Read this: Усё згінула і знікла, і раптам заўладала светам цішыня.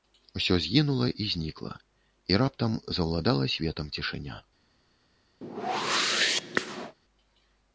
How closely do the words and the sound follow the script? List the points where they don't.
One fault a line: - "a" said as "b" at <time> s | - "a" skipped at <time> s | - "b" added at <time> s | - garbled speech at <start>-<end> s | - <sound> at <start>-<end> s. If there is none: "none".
- whoosh at 5.4-6.9 s